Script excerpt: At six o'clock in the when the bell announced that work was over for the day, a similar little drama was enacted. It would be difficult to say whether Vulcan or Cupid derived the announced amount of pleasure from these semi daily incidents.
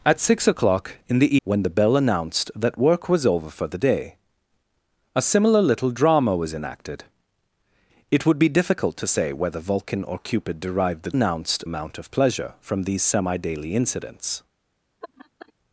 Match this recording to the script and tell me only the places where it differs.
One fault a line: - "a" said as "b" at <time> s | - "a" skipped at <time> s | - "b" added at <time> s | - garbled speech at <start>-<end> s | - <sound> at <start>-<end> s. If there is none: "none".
- laugh at 15.0-15.5 s